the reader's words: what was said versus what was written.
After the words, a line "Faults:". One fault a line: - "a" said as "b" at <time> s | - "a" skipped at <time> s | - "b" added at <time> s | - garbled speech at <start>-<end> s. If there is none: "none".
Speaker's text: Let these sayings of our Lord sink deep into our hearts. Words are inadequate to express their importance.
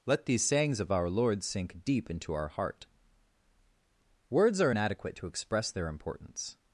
Let these sayings of our Lord sink deep into our heart. Words are inadequate to express their importance.
Faults:
- "hearts" said as "heart" at 2.5 s